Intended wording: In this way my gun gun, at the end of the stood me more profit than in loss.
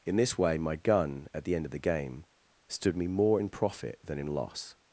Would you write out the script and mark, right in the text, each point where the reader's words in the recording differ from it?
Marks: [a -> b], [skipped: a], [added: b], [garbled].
In this way my gun [skipped: gun,] at the end of the [added: game] stood me more [added: in] profit than in loss.